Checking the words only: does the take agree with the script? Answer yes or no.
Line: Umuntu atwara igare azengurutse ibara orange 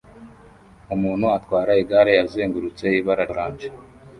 yes